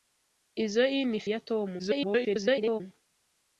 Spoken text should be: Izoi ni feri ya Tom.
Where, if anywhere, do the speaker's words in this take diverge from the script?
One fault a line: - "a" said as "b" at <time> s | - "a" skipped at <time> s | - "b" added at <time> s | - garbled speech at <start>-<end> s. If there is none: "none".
- "feri" skipped at 1.2 s
- garbled speech at 1.8-2.8 s